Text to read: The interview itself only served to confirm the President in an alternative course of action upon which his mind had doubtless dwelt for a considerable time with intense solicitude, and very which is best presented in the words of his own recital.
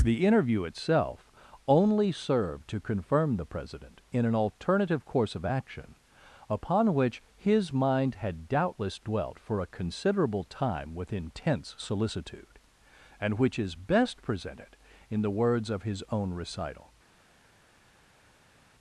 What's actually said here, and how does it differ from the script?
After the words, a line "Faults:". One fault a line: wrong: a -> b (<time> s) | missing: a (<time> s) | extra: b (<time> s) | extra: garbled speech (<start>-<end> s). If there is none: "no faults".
The interview itself only served to confirm the President in an alternative course of action upon which his mind had doubtless dwelt for a considerable time with intense solicitude, and which is best presented in the words of his own recital.
Faults:
missing: very (13.4 s)